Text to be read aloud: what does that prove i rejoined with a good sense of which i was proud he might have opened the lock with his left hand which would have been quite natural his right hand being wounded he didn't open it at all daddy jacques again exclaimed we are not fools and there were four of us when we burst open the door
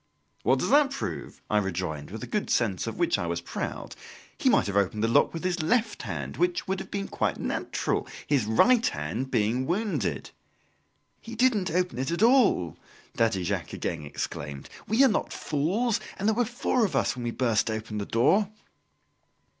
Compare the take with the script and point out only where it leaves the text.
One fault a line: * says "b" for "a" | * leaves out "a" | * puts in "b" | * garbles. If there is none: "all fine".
all fine